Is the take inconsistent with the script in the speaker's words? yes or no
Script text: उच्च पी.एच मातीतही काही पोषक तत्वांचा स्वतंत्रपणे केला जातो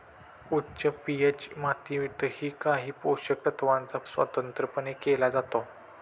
no